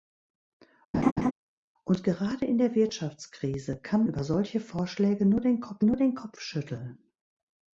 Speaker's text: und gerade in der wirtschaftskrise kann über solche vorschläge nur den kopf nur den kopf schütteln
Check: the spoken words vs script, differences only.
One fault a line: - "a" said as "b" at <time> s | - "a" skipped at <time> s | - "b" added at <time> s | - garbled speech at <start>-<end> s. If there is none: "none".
none